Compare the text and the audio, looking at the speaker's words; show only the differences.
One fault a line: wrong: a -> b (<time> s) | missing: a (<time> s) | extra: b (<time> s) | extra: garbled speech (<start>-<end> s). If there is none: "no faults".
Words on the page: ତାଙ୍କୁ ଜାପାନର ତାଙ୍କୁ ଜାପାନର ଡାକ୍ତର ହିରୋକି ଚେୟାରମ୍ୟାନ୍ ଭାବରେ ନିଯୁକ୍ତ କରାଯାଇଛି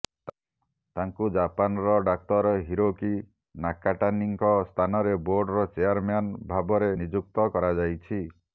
wrong: ତାଙ୍କୁ ଜାପାନର ଡାକ୍ତର ହିରୋକି -> ଡାକ୍ତର ହିରୋକି ନାକାଟାନୀଙ୍କ ସ୍ଥାନରେ ବୋର୍ଡର (2.1 s)